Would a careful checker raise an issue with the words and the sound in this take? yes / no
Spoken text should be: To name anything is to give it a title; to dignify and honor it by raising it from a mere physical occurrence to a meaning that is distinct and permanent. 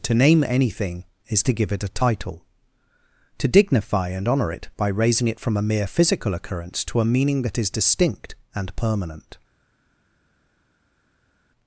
no